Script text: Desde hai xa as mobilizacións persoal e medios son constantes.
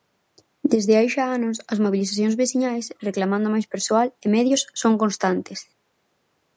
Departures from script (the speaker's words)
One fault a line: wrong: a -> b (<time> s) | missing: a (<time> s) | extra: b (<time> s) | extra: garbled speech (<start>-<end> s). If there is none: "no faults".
extra: anos (1.4 s)
extra: veciñais reclamando máis (2.4 s)